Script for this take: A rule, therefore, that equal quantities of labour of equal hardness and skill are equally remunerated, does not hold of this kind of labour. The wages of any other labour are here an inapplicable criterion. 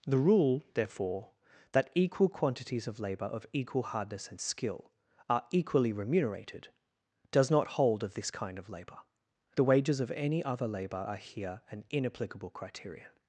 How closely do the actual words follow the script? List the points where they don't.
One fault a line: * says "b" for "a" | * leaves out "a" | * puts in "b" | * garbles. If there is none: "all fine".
* says "The" for "A"